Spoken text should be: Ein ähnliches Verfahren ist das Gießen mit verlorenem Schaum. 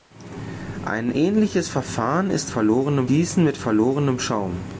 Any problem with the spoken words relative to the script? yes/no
yes